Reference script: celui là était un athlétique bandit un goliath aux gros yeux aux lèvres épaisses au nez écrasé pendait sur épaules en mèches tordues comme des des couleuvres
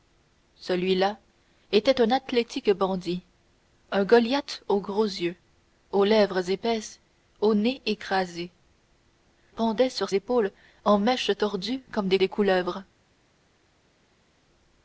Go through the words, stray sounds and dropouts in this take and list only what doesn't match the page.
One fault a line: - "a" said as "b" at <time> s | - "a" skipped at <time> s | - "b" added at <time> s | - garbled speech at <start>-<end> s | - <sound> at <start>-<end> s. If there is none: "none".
none